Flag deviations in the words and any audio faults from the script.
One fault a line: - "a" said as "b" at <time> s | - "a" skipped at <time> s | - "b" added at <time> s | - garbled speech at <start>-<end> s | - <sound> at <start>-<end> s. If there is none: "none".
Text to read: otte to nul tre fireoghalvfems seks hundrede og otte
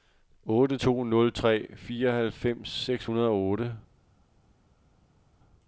none